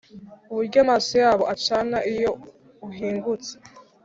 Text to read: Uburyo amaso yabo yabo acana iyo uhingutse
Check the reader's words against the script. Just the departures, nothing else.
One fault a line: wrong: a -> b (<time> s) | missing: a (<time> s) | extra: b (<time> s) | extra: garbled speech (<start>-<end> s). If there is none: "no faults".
missing: yabo (1.4 s)